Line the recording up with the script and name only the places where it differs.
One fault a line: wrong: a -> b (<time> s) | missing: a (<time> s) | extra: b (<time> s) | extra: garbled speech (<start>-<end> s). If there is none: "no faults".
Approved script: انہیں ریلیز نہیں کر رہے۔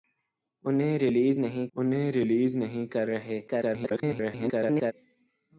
extra: انہیں ریلیز نہیں (1.7 s)
extra: garbled speech (3.5-4.9 s)